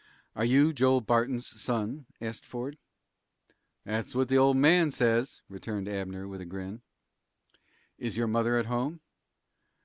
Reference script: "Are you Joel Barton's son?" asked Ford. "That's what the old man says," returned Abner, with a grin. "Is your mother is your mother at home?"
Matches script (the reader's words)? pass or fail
fail